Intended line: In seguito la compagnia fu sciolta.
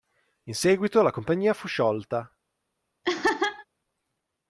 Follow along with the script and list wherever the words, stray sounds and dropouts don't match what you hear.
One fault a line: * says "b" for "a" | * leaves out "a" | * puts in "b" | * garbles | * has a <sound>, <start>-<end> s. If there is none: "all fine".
* has a laugh, 3.0-3.7 s